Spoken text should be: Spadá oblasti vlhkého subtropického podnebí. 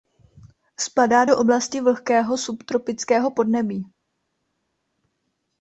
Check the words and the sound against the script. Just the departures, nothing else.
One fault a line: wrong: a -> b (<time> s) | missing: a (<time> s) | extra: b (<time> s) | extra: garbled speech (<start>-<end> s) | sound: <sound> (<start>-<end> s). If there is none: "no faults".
extra: do (1.2 s)